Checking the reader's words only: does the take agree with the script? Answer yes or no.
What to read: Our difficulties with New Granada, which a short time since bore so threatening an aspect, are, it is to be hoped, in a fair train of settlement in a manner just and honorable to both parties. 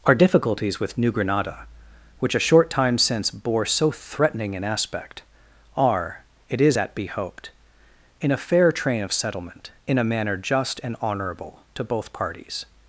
no